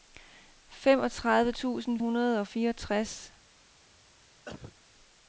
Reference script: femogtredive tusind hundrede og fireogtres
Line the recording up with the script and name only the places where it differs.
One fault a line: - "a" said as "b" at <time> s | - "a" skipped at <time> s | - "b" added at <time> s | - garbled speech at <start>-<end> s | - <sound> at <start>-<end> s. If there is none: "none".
- cough at 4.5-4.8 s